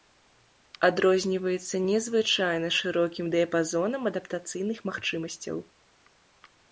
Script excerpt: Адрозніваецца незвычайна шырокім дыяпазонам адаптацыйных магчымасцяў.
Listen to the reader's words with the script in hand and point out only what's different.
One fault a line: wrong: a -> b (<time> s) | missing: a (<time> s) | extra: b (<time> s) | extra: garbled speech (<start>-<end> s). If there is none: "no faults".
no faults